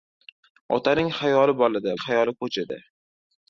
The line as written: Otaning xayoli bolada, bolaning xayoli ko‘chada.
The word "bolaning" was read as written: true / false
false